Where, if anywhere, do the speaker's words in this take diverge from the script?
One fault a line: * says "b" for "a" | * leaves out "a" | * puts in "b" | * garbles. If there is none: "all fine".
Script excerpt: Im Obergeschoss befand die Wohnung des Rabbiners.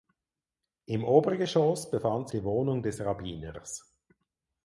all fine